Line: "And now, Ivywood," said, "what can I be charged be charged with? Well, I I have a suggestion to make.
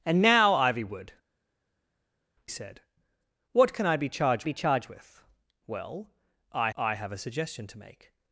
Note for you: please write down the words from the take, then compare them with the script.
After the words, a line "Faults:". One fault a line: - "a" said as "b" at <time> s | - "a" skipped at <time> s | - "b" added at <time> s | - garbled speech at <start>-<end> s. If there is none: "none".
"And now, Ivywood," said, "what can I be charged be charged with? Well, I I have a suggestion to make.
Faults:
none